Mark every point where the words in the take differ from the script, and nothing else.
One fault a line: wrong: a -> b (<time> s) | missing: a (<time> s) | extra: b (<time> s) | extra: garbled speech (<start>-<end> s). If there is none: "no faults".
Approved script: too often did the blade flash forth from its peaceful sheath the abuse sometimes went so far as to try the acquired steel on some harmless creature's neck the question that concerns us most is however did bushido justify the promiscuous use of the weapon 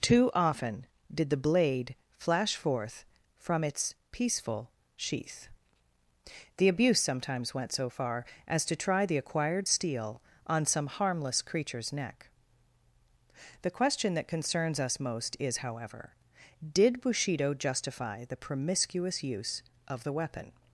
no faults